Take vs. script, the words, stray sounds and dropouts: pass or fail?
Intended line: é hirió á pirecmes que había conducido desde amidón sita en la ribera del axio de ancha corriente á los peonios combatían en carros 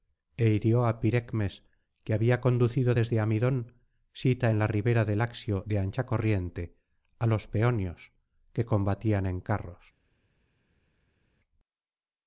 fail